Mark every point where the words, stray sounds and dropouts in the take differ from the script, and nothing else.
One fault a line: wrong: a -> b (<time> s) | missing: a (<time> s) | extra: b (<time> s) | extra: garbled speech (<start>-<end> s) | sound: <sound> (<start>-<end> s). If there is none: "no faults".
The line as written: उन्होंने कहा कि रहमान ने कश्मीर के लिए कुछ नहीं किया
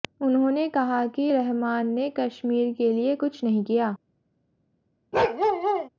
sound: bark (5.1-5.9 s)